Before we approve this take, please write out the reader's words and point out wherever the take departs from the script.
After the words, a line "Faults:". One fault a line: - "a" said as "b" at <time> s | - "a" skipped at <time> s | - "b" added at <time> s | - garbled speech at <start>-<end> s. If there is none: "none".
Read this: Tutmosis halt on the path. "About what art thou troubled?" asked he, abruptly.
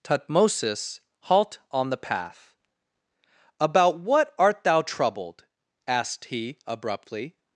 Tutmosis halt on the path. "About what art thou troubled?" asked he, abruptly.
Faults:
none